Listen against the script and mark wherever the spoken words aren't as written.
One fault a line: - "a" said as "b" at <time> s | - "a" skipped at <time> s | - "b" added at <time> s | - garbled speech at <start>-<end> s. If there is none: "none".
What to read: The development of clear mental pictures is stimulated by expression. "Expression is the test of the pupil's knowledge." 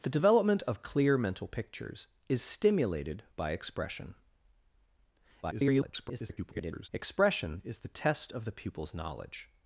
- garbled speech at 5.4-6.9 s